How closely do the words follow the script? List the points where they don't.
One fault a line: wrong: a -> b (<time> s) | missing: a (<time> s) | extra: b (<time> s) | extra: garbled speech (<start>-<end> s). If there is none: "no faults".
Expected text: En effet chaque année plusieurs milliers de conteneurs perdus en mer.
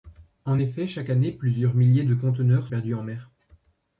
no faults